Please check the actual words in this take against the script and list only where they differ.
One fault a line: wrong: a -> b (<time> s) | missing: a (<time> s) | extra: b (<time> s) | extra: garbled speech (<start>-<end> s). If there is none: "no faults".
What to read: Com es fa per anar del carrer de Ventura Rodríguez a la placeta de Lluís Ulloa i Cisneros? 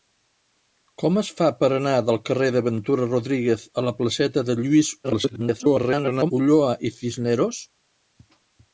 extra: garbled speech (5.0-6.3 s)